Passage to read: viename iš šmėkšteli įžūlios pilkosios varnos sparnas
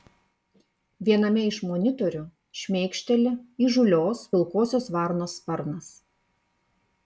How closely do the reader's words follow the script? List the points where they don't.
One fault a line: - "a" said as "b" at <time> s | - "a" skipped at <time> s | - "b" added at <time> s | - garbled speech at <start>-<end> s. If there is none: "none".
- "monitorių" added at 1.7 s